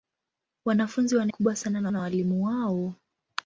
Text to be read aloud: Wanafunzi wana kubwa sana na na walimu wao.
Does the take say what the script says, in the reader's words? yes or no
yes